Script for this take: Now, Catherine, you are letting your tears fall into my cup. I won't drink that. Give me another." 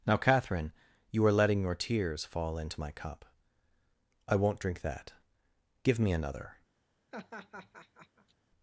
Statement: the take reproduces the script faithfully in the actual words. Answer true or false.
true